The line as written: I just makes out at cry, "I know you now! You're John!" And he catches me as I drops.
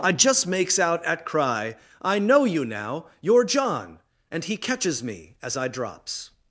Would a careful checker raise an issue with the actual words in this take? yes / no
no